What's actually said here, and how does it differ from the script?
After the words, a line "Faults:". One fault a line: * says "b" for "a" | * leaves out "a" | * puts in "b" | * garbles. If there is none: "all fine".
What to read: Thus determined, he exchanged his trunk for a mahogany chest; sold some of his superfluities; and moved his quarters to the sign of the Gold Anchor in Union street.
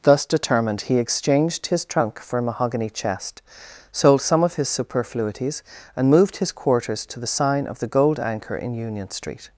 Thus determined, he exchanged his trunk for a mahogany chest; sold some of his superfluities; and moved his quarters to the sign of the Gold Anchor in Union street.
Faults:
all fine